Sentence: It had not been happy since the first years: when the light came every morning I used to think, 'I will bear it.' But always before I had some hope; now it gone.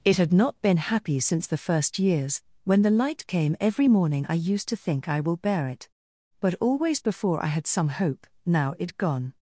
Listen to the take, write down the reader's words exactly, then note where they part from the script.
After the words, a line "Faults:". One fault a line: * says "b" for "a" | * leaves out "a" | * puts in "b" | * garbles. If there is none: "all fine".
It had not been happy since the first years: when the light came every morning I used to think, 'I will bear it.' But always before I had some hope; now it gone.
Faults:
all fine